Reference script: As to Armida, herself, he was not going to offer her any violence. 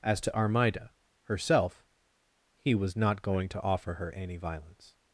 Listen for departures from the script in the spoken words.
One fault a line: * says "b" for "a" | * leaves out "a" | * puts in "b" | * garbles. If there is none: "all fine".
all fine